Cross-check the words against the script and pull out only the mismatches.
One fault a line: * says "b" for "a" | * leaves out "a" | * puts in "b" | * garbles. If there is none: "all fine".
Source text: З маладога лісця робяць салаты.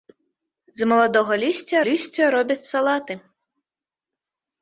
* puts in "лісця"